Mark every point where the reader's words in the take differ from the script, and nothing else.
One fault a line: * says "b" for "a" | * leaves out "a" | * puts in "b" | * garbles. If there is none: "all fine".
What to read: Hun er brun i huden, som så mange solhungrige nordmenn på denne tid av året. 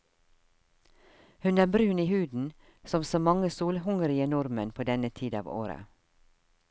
all fine